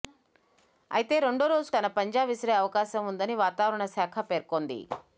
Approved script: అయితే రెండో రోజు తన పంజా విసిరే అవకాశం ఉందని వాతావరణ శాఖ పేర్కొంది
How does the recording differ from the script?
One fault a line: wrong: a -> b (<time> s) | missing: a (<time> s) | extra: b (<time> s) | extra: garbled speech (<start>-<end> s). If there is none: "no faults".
no faults